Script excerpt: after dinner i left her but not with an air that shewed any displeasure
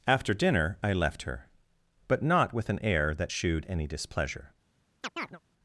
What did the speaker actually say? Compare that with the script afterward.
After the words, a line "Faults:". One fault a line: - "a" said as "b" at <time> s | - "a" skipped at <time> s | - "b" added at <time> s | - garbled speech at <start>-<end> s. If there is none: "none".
after dinner i left her but not with an air that shewed any displeasure
Faults:
none